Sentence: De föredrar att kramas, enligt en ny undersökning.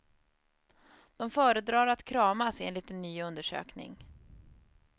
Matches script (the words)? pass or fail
pass